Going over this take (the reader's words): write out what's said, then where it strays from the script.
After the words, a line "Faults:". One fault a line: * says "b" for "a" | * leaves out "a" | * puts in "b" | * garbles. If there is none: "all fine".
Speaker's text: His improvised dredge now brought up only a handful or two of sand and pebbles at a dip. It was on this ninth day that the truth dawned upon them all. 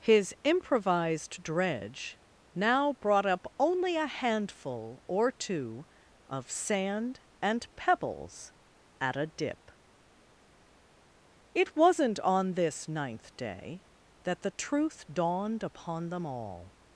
His improvised dredge now brought up only a handful or two of sand and pebbles at a dip. It wasn't on this ninth day that the truth dawned upon them all.
Faults:
* says "wasn't" for "was"